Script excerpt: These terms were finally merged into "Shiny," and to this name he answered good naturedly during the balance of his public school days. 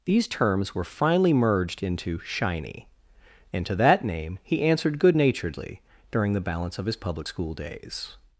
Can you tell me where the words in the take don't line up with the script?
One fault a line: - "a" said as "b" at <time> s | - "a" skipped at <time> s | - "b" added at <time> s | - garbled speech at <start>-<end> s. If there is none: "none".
- "this" said as "that" at 3.8 s